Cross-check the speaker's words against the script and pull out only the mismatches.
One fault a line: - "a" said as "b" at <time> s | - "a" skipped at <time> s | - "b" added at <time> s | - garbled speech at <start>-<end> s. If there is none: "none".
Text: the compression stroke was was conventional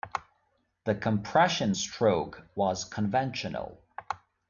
- "was" skipped at 2.8 s